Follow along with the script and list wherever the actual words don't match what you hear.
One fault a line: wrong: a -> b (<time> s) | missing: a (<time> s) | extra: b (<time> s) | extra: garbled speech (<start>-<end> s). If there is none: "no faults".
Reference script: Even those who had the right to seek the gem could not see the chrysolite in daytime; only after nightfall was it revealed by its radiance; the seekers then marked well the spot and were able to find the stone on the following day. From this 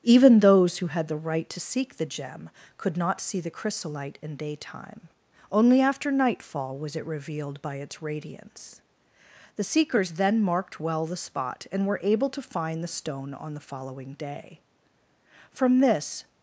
no faults